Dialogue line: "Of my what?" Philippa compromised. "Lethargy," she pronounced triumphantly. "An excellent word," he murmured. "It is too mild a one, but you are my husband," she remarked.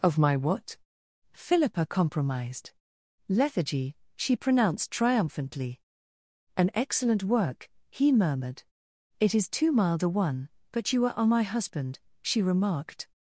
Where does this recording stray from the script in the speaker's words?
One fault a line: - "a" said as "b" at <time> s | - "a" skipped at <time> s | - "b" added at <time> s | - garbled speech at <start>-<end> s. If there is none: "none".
- "word" said as "work" at 7.2 s